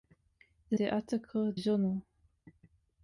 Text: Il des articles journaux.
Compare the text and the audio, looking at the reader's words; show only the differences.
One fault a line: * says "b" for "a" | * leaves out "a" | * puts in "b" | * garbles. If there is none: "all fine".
all fine